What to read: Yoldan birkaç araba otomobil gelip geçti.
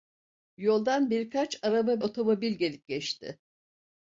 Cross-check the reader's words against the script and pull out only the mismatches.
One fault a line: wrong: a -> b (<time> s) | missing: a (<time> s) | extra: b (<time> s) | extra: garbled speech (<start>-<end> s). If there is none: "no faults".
no faults